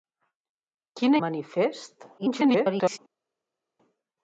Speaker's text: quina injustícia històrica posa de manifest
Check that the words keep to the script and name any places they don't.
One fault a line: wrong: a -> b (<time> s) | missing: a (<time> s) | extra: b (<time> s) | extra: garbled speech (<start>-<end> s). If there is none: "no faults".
missing: injustícia històrica posa (1.2 s)
extra: garbled speech (2.2-3.0 s)